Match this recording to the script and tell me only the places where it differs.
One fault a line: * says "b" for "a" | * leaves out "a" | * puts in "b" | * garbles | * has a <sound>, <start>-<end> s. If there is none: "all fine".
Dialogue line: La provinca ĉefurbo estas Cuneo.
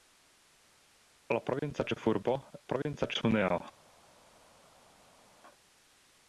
* says "provinca" for "estas"